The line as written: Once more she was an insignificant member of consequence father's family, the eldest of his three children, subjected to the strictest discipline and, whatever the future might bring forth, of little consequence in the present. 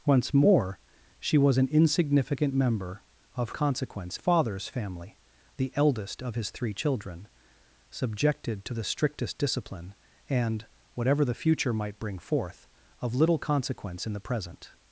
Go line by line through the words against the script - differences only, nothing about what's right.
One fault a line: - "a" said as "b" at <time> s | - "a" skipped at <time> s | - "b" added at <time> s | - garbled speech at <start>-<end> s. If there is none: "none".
none